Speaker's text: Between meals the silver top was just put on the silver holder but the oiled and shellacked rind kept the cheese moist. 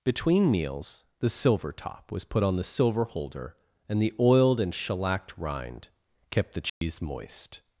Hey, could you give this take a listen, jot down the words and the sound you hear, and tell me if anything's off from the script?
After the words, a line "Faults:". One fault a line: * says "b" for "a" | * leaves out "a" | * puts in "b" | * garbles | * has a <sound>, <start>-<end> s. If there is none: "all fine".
Between meals the silver top was put on the silver holder and the oiled and shellacked rind kept the cheese moist.
Faults:
* leaves out "just"
* says "and" for "but"
* has a dropout, 6.7-6.8 s